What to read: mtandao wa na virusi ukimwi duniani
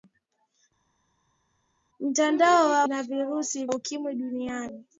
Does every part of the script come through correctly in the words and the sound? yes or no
yes